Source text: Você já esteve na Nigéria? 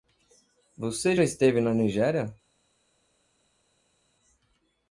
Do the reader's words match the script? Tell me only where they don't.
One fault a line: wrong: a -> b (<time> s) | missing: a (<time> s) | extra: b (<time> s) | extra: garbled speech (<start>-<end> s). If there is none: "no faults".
no faults